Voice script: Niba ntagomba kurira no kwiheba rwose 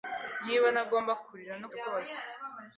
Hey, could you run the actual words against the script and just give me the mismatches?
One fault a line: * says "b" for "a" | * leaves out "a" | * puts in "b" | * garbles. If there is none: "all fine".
* leaves out "kwiheba"